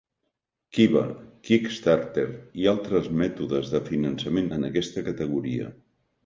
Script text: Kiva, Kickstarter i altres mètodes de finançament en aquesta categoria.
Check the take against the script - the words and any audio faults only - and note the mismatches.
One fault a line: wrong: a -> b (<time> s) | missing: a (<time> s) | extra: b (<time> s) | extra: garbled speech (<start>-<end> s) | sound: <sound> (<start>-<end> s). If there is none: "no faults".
no faults